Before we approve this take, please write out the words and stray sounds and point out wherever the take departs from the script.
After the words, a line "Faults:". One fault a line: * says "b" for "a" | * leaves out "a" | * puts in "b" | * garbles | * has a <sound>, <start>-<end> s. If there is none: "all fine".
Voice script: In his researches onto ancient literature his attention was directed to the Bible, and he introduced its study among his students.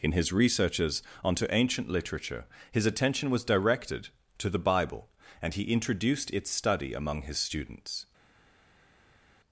In his researches onto ancient literature his attention was directed to the Bible, and he introduced its study among his students.
Faults:
all fine